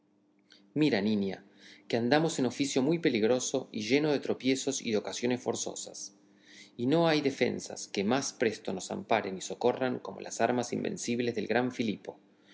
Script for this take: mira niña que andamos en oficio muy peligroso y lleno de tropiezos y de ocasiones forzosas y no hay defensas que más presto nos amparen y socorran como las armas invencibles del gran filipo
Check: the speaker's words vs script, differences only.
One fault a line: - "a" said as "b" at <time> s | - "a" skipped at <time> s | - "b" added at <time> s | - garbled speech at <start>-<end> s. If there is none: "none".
none